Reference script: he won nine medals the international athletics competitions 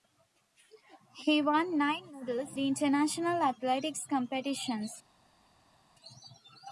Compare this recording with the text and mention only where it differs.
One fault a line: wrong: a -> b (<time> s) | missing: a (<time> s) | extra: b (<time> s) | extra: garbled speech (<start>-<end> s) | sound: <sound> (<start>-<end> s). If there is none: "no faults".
no faults